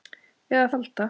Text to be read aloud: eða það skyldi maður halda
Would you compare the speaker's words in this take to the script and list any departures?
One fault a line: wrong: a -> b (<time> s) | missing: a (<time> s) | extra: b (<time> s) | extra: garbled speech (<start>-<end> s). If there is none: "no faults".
missing: það skyldi maður (0.6 s)